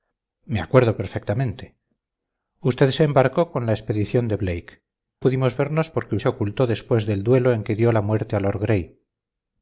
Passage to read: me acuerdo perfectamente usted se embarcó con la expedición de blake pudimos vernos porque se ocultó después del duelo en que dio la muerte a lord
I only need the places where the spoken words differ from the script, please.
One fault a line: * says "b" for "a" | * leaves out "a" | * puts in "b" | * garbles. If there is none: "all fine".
all fine